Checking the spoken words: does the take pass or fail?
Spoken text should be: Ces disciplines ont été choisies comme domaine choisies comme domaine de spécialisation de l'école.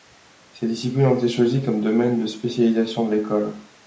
fail